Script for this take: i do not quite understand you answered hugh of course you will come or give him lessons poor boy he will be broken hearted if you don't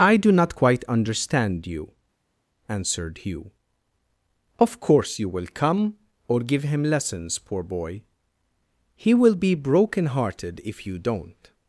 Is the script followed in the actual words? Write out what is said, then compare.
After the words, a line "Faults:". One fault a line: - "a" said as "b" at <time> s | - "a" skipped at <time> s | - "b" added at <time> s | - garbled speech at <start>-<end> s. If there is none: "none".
i do not quite understand you answered hugh of course you will come or give him lessons poor boy he will be broken hearted if you don't
Faults:
none